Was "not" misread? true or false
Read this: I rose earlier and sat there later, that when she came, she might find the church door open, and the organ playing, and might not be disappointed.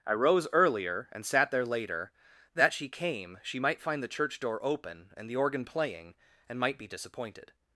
true